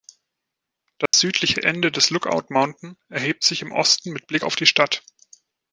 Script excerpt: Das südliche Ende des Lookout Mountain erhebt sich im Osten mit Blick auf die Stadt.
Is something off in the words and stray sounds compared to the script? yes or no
yes